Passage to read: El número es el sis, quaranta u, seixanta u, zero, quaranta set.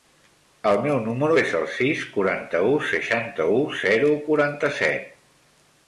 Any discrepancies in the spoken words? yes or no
yes